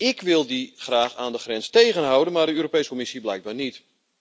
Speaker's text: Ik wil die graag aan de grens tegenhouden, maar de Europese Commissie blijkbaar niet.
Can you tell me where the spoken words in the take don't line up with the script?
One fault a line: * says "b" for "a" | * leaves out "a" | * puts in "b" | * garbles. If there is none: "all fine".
all fine